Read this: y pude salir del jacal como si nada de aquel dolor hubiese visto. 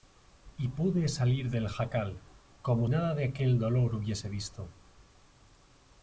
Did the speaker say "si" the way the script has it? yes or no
no